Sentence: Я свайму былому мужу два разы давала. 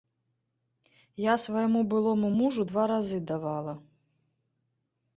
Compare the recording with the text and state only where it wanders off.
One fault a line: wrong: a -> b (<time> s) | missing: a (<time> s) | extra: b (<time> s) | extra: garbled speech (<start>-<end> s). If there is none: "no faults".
no faults